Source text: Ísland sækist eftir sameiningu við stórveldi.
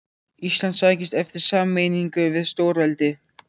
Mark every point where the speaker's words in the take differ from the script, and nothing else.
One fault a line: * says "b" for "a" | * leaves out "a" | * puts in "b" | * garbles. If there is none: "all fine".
all fine